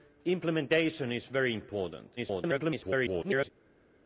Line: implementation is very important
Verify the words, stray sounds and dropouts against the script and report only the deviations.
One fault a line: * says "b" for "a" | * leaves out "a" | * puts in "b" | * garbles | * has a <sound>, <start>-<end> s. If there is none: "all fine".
* garbles